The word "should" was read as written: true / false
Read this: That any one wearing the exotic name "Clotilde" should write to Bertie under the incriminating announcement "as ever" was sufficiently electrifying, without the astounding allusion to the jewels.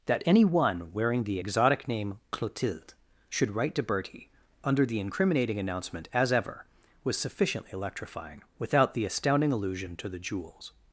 true